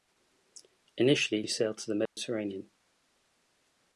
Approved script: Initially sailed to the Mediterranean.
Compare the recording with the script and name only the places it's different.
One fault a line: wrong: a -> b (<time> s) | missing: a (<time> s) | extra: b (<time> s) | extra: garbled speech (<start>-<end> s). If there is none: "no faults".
no faults